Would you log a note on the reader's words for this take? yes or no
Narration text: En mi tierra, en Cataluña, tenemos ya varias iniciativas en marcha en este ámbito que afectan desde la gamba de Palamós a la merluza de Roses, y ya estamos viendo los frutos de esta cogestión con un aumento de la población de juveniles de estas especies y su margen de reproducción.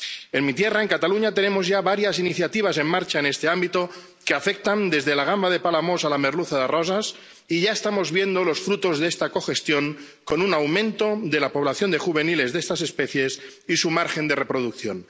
no